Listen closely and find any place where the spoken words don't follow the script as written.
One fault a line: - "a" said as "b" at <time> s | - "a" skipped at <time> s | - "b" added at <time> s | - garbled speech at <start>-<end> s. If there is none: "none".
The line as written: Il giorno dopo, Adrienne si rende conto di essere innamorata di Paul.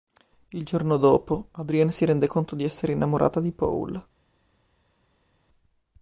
none